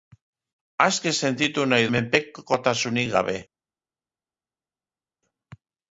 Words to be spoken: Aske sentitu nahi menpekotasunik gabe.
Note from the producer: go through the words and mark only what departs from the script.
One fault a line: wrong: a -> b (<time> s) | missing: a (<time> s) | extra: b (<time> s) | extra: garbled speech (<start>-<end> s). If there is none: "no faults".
no faults